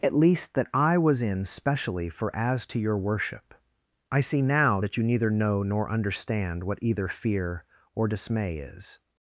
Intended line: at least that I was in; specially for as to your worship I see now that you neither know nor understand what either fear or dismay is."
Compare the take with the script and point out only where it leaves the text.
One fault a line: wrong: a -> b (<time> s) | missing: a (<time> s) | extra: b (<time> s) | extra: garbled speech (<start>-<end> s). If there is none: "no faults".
no faults